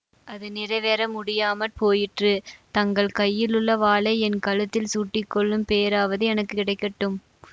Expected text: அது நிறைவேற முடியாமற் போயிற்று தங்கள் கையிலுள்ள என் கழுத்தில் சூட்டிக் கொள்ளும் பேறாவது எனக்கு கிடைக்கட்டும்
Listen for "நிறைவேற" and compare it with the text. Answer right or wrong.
right